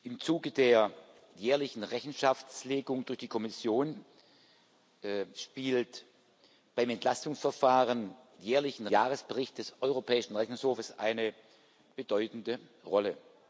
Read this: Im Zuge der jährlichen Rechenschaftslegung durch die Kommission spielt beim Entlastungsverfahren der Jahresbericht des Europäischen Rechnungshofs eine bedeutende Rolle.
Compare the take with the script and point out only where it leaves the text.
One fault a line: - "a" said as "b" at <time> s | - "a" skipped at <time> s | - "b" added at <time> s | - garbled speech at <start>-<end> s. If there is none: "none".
- "der" said as "jährlichen" at 8.4 s